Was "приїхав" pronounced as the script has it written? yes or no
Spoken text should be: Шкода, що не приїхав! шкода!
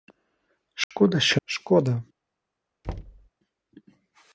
no